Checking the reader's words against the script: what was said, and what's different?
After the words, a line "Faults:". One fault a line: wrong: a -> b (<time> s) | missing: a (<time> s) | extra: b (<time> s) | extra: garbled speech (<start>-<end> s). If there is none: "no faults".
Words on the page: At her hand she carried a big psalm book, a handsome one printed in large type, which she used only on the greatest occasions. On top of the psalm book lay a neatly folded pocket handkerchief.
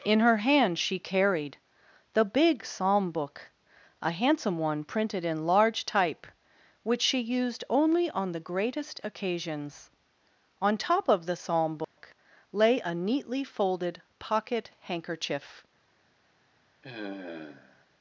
In her hand she carried the big psalm book, a handsome one printed in large type, which she used only on the greatest occasions. On top of the psalm book lay a neatly folded pocket handkerchief.
Faults:
wrong: At -> In (0.0 s)
wrong: a -> the (2.1 s)